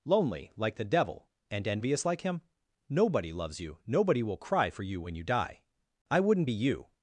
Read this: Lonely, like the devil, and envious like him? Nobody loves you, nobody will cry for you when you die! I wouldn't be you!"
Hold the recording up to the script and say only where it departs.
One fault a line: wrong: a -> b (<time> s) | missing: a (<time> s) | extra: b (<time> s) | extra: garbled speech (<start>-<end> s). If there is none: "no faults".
no faults